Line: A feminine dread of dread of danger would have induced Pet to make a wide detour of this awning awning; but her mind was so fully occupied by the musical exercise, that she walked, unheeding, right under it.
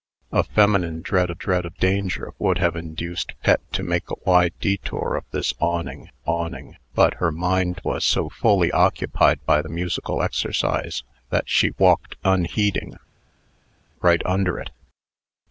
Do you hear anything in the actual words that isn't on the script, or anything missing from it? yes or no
no